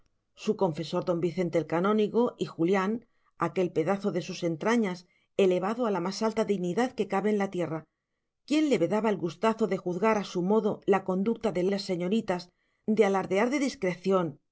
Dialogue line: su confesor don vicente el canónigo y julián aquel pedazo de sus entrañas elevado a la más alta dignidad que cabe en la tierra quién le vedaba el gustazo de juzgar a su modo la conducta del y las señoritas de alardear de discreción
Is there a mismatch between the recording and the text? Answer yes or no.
no